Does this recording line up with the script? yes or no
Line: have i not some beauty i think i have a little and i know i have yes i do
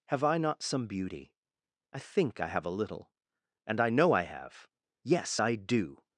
yes